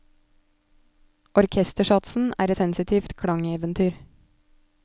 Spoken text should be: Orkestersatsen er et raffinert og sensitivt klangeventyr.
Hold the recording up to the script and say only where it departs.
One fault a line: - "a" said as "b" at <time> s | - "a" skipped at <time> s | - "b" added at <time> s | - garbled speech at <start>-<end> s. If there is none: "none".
- "et raffinert og" skipped at 2.5 s